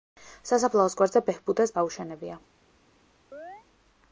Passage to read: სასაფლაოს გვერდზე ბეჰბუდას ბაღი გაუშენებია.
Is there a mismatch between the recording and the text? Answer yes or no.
yes